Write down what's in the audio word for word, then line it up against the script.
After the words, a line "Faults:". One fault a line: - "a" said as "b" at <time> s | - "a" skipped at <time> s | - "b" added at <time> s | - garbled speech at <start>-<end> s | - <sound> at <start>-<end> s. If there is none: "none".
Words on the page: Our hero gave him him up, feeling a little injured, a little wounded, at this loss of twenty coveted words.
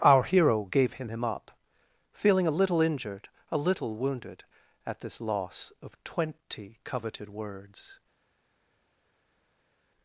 Our hero gave him him up, feeling a little injured, a little wounded, at this loss of twenty coveted words.
Faults:
none